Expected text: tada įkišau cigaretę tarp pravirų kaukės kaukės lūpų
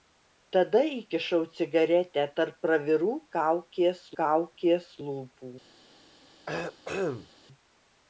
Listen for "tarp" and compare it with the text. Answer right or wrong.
right